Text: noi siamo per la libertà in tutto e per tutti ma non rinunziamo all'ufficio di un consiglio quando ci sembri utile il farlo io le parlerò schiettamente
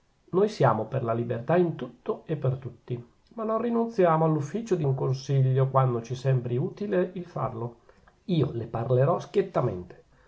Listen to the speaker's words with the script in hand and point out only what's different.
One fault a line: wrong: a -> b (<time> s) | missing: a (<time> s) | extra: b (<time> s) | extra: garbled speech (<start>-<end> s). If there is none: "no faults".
no faults